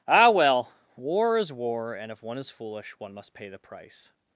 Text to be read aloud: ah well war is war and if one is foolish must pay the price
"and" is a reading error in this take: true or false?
false